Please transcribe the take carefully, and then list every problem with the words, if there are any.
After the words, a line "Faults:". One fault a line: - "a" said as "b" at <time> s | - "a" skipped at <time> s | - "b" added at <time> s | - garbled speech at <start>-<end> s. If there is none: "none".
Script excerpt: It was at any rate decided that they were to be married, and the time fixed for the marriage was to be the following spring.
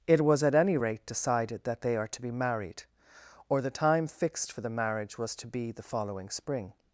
It was at any rate decided that they are to be married, or the time fixed for the marriage was to be the following spring.
Faults:
- "were" said as "are" at 2.0 s
- "and" said as "or" at 3.5 s